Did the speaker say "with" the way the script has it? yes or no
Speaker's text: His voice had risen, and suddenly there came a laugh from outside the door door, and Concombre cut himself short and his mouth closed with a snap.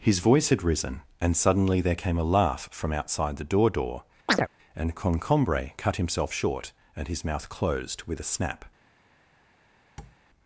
yes